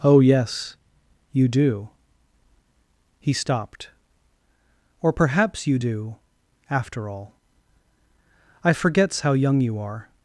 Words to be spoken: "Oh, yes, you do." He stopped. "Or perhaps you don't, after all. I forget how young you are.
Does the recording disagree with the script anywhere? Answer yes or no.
yes